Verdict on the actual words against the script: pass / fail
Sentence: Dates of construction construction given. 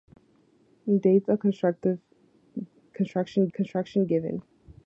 pass